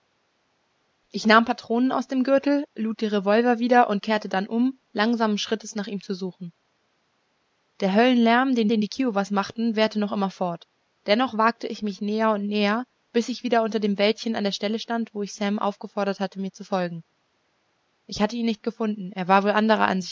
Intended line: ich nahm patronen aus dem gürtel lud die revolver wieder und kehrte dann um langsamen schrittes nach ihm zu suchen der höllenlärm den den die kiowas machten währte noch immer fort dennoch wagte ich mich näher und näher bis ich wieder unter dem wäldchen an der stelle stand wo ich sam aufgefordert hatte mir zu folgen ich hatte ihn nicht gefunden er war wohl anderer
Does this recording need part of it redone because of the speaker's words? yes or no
no